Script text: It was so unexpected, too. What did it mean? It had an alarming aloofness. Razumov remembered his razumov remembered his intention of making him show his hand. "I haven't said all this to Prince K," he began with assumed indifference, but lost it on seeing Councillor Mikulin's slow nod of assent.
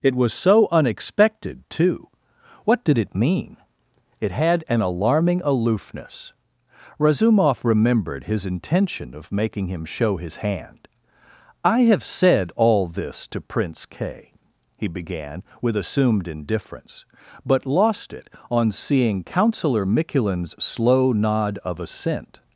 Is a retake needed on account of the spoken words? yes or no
yes